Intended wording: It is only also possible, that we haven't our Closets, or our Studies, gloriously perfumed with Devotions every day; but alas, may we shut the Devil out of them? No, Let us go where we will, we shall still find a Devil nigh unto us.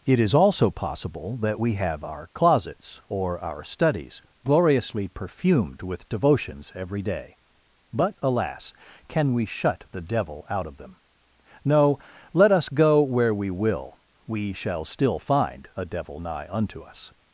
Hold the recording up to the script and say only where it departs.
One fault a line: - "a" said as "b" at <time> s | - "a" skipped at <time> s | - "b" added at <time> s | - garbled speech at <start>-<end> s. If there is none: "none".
- "only" skipped at 0.3 s
- "haven't" said as "have" at 1.7 s
- "may" said as "can" at 9.1 s